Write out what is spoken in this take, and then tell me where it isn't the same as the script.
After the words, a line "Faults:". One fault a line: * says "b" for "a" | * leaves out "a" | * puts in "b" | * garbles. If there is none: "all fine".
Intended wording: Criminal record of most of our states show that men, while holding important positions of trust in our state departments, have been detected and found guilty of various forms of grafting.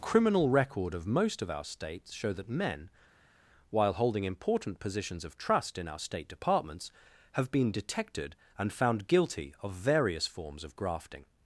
Criminal record of most of our states show that men, while holding important positions of trust in our state departments, have been detected and found guilty of various forms of grafting.
Faults:
all fine